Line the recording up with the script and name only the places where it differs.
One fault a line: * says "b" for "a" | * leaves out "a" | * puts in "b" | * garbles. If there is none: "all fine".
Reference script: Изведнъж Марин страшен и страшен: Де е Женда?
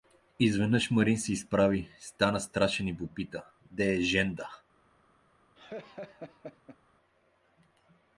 * puts in "се изправи стана"
* says "попита" for "страшен"